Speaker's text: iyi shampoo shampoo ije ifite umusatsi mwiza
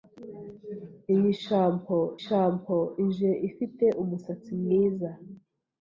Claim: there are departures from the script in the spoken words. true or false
false